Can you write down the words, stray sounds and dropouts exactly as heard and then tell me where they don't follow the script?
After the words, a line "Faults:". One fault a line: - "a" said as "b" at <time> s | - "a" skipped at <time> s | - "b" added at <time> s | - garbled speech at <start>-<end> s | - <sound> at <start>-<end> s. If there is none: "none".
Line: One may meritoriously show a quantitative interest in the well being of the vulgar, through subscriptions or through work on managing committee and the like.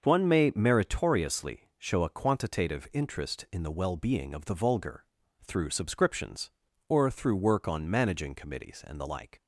One may meritoriously show a quantitative interest in the well being of the vulgar, through subscriptions or through work on managing committees and the like.
Faults:
- "committee" said as "committees" at 8.3 s